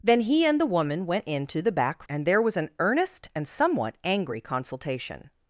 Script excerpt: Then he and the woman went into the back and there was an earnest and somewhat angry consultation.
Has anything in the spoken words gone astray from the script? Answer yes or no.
no